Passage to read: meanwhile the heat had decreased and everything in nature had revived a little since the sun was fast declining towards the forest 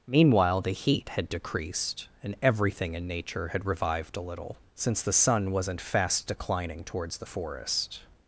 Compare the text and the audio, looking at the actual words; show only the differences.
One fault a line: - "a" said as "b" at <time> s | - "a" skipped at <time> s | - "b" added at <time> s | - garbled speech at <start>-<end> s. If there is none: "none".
- "was" said as "wasn't" at 5.5 s